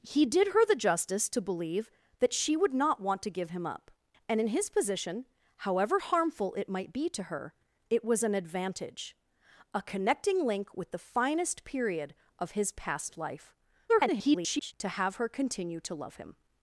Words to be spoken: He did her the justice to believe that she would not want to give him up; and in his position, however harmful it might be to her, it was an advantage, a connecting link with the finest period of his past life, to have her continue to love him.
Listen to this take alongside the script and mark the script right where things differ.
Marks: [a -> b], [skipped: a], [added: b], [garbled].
He did her the justice to believe that she would not want to give him up; and in his position, however harmful it might be to her, it was an advantage, a connecting link with the finest period of his past life, [garbled] to have her continue to love him.